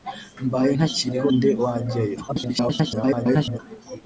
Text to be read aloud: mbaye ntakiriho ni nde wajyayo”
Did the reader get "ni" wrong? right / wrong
wrong